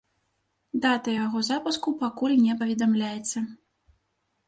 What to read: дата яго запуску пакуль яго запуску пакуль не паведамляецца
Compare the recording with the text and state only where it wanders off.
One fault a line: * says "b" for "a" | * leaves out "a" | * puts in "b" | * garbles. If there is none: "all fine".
* leaves out "яго запуску пакуль"